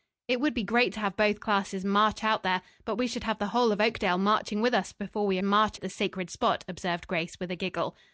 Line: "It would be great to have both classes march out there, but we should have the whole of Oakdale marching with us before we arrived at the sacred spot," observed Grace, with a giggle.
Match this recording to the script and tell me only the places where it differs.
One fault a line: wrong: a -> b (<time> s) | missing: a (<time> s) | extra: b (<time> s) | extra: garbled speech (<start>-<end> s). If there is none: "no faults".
wrong: arrived -> march (5.4 s)